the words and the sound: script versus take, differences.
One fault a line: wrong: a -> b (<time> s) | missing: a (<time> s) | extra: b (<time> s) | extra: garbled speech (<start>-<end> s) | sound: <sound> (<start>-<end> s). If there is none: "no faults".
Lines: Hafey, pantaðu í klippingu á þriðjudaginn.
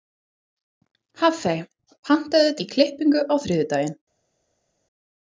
no faults